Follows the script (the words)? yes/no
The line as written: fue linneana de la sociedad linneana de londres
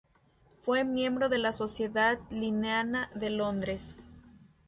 no